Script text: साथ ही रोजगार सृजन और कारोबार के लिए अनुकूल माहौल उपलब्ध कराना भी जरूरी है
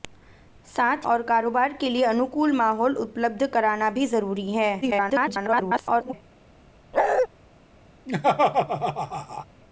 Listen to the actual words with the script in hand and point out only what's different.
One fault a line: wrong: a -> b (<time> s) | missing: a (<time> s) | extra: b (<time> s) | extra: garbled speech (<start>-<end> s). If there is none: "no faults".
missing: ही रोजगार सृजन (1.1 s)
extra: garbled speech (4.8-6.1 s)